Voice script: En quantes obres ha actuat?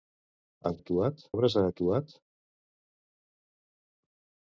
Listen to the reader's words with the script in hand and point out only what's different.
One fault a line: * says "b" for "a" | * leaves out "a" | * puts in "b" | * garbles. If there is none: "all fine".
* says "actuat" for "quantes"